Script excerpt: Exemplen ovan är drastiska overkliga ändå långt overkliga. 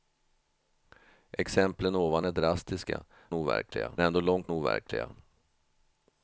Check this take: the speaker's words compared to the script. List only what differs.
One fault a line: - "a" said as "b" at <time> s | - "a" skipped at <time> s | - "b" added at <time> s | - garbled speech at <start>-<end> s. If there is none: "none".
none